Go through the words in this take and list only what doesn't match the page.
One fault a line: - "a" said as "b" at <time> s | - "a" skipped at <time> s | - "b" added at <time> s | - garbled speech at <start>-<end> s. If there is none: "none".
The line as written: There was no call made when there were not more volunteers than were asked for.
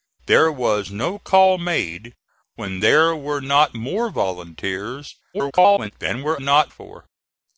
- garbled speech at 5.3-5.9 s
- "asked" said as "not" at 6.4 s